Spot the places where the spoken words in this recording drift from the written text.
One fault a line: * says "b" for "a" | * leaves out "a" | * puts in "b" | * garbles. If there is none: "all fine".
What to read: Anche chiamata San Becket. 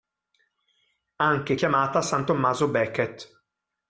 * puts in "Tommaso"